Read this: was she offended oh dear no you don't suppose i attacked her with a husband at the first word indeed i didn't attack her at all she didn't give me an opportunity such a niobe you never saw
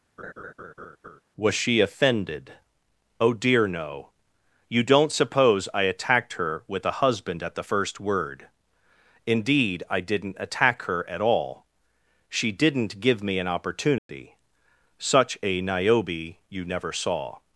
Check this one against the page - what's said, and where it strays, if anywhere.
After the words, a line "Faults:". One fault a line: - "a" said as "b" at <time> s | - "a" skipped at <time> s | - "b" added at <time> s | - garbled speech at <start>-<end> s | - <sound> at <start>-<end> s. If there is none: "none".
was she offended oh dear no you don't suppose i attacked her with a husband at the first word indeed i didn't attack her at all she didn't give me an opportunity such a niobe you never saw
Faults:
- laugh at 0.2-1.2 s
- dropout at 14.0-14.1 s